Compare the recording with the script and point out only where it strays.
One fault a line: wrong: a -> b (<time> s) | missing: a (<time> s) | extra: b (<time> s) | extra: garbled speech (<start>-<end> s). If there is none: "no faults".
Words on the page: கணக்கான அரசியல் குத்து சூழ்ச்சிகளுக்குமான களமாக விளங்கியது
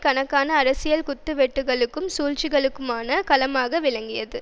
extra: வெட்டுக்களுக்கும் (1.3 s)